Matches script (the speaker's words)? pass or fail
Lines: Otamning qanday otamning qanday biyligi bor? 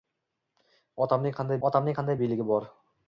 pass